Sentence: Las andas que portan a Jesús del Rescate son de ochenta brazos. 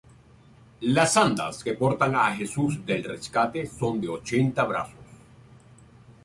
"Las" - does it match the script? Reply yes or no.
yes